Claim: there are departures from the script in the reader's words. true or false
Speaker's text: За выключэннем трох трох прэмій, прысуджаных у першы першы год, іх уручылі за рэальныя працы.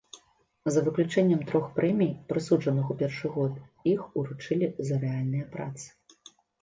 true